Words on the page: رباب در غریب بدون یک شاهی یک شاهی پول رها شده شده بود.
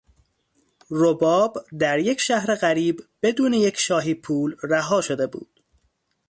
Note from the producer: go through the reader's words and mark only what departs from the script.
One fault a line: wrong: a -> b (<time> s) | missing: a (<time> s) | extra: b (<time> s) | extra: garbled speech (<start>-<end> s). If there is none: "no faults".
extra: یک شهر (2.0 s)
missing: یک شاهی (4.1 s)
missing: شده (5.3 s)